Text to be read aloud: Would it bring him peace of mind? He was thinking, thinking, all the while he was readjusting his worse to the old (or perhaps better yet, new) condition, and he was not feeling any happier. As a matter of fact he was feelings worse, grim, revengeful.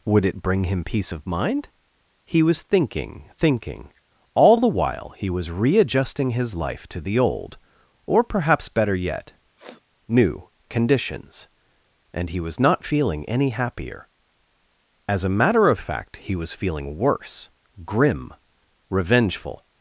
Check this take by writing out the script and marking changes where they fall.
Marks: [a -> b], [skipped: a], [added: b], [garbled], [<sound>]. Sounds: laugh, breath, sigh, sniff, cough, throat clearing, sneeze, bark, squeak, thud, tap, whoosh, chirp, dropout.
Would it bring him peace of mind? He was thinking, thinking, all the while he was readjusting his [worse -> life] to the old (or perhaps better yet, [sniff] new) [condition, -> conditions] and he was not feeling any happier. As a matter of fact he was [feelings -> feeling] worse, grim, revengeful.